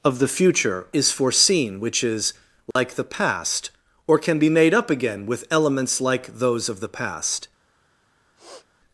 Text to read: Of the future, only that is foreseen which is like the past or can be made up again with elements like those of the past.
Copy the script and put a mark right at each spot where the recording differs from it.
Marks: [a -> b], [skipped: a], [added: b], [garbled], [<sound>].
Of the future, [skipped: only that] is foreseen which is like [dropout] the past or can be made up again with elements like those of the past. [sniff]